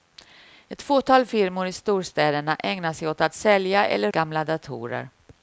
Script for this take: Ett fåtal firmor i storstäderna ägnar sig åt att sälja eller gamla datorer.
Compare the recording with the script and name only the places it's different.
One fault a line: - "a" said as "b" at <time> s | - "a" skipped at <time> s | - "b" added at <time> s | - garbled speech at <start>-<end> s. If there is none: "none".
none